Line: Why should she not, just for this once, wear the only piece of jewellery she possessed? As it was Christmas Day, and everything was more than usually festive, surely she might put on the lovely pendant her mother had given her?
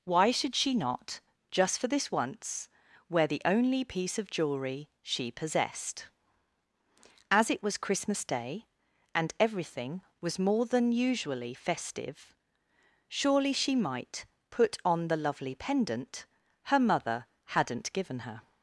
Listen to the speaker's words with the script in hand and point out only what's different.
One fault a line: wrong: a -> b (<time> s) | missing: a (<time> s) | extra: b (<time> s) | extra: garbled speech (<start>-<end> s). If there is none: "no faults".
wrong: had -> hadn't (17.4 s)